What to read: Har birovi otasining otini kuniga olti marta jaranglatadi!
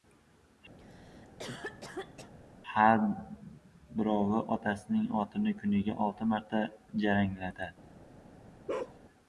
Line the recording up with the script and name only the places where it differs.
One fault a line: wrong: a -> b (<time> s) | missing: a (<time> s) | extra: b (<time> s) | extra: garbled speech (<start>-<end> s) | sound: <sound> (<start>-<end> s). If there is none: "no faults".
sound: cough (0.8-2.3 s)
sound: bark (8.7-9.0 s)